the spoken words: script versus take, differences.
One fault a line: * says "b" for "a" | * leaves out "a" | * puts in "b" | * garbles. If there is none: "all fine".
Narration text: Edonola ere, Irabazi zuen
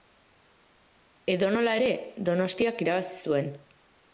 * puts in "Donostiak"